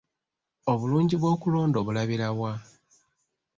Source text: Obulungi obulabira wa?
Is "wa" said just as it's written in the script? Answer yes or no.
yes